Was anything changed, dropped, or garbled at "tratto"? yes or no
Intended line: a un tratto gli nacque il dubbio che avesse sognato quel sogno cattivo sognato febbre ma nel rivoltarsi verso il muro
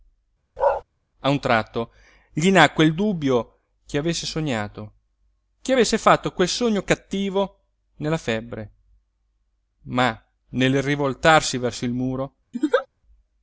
no